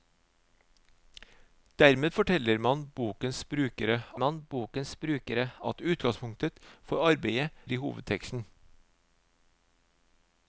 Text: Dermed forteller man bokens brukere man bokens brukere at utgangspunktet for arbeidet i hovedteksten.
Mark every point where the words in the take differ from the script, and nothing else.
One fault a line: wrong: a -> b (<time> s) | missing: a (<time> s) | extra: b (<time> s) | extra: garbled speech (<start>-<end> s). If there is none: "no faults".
no faults